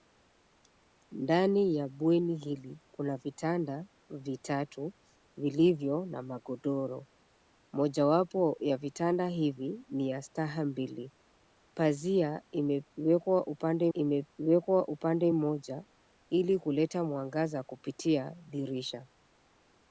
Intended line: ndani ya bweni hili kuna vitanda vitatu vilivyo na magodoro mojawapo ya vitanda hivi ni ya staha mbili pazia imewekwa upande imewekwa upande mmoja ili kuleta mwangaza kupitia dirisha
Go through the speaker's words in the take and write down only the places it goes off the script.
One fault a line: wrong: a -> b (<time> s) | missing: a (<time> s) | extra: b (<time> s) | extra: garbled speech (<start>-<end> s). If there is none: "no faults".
no faults